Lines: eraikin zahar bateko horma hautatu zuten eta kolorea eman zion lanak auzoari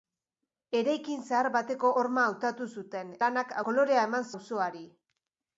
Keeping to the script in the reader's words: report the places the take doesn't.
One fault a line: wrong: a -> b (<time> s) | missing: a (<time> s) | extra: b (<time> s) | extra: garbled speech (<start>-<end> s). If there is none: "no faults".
wrong: eta -> lanak (3.3 s)
missing: zion lanak (4.3 s)